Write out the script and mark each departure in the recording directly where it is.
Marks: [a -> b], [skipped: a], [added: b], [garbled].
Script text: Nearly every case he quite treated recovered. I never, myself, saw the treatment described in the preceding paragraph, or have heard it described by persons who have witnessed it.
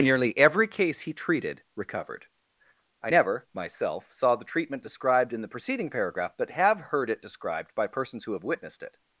Nearly every case he [skipped: quite] treated recovered. I never, myself, saw the treatment described in the preceding paragraph, [or -> but] have heard it described by persons who have witnessed it.